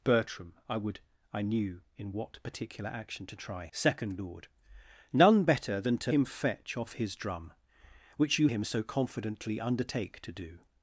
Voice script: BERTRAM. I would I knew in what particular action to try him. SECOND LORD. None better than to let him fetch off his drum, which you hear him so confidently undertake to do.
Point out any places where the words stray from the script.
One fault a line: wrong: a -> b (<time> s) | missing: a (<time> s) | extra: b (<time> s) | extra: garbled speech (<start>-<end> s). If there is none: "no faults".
missing: him (3.7 s)
missing: let (6.1 s)
missing: hear (8.5 s)